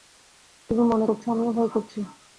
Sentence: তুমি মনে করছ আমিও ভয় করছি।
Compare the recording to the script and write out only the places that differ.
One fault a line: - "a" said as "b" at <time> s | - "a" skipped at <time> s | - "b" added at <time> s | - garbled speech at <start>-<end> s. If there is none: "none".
none